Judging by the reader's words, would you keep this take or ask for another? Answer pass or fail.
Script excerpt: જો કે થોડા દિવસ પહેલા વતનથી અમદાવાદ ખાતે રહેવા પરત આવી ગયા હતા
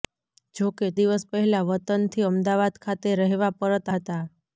fail